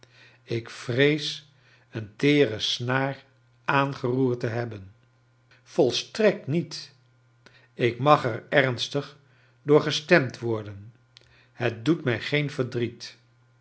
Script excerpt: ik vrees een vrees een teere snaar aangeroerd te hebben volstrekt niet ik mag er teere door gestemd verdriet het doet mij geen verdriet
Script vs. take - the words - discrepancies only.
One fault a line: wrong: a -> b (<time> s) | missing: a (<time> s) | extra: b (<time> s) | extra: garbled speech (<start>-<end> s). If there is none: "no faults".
missing: vrees een (2.1 s)
wrong: teere -> ernstig (8.5 s)
wrong: verdriet -> worden (10.4 s)